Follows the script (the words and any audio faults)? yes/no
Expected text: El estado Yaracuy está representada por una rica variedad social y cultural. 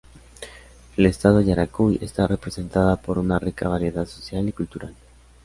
yes